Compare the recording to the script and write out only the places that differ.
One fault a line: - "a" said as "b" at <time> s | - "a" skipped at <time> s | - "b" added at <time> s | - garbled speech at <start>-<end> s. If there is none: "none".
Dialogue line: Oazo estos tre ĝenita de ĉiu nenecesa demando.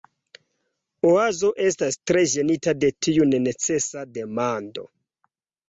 - "estos" said as "estas" at 1.6 s
- "ĉiu" said as "tiu" at 3.1 s